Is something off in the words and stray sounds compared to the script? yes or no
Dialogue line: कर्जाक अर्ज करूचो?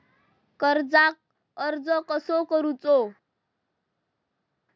yes